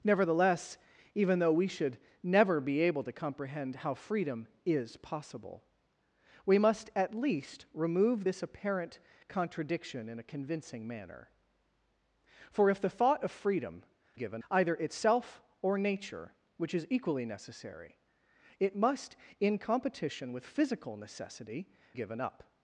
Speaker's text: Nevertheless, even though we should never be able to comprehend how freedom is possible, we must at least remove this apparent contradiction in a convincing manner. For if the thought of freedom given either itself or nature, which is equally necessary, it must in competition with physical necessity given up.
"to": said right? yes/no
yes